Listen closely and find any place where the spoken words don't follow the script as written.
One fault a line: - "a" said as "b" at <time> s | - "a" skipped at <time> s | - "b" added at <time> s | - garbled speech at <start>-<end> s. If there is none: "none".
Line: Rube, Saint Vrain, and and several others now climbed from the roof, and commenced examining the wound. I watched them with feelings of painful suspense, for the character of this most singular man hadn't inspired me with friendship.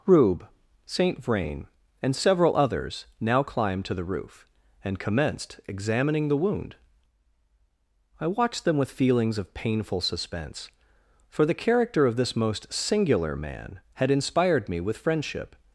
- "and" skipped at 2.1 s
- "from" said as "to" at 3.8 s
- "hadn't" said as "had" at 13.9 s